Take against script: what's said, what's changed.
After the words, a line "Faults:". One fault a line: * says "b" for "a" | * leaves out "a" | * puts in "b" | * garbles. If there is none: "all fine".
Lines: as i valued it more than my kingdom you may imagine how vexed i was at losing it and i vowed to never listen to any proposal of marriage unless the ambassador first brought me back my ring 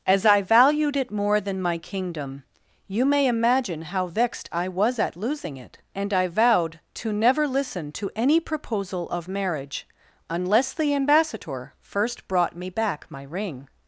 as i valued it more than my kingdom you may imagine how vexed i was at losing it and i vowed to never listen to any proposal of marriage unless the ambassador first brought me back my ring
Faults:
all fine